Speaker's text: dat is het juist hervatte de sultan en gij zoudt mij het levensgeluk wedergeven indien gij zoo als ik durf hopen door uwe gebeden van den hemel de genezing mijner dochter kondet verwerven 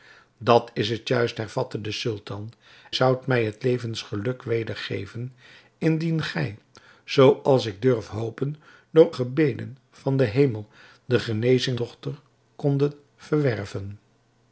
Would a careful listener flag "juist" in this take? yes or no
no